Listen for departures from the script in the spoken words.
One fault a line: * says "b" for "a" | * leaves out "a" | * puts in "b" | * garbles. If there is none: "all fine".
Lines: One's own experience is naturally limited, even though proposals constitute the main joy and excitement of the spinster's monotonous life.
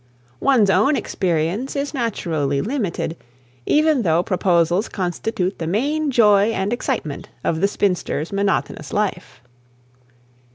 all fine